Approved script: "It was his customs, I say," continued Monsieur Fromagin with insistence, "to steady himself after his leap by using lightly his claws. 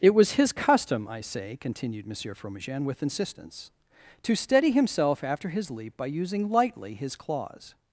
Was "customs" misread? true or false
true